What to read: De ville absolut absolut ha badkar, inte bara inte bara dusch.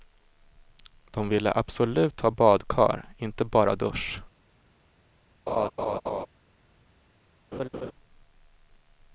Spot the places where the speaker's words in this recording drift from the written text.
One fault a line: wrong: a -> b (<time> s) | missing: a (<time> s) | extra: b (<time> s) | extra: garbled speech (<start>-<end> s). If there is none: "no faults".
missing: absolut (2.2 s)
missing: inte bara (3.7 s)